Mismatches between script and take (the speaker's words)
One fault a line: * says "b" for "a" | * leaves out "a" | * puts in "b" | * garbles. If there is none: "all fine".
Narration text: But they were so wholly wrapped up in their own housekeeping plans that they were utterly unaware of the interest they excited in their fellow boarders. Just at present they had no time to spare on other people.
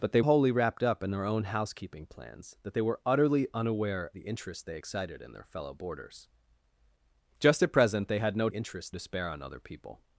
* leaves out "were so"
* leaves out "of"
* says "interest" for "time"